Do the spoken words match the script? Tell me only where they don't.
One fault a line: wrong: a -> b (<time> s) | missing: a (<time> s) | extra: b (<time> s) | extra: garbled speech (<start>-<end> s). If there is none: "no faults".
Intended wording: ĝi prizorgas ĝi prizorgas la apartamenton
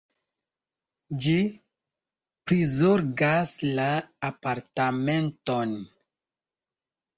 missing: ĝi prizorgas (3.5 s)